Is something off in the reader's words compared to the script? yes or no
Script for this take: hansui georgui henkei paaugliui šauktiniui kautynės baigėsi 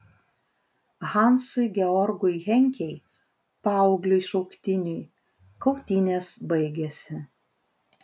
no